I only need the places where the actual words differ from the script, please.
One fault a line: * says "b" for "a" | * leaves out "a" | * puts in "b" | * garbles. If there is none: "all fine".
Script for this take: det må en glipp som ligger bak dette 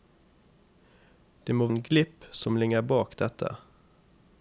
all fine